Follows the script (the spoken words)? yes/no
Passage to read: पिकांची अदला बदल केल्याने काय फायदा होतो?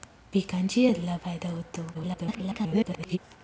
no